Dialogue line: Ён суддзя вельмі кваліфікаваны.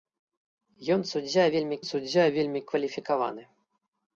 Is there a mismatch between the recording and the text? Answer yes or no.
yes